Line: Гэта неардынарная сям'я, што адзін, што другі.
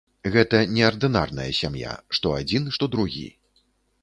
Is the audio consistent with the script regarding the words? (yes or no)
yes